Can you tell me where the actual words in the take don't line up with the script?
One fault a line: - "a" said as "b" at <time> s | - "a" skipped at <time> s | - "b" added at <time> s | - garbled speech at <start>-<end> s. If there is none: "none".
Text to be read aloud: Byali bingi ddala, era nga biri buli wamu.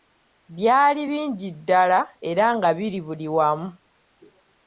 none